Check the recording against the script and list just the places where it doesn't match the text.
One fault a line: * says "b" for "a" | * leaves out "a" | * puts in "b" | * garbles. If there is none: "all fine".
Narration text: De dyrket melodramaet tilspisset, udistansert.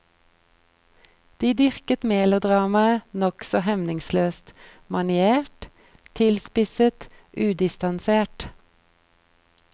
* puts in "nokså hemningsløst maniert"